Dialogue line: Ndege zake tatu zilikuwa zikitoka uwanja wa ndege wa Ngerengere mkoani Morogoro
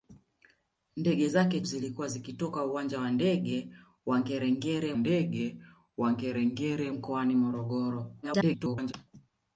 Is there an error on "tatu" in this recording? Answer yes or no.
yes